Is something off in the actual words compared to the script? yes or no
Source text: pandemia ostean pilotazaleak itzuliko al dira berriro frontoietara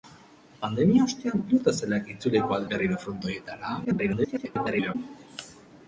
yes